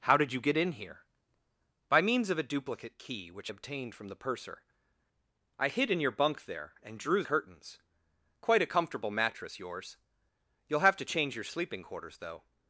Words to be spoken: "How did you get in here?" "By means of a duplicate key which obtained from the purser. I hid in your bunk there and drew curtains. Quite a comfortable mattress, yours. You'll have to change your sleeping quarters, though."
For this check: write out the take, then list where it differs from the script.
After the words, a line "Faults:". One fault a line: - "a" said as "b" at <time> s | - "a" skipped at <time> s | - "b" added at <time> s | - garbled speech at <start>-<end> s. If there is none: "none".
"How did you get in here?" "By means of a duplicate key which obtained from the purser. I hid in your bunk there and drew curtains. Quite a comfortable mattress, yours. You'll have to change your sleeping quarters, though."
Faults:
none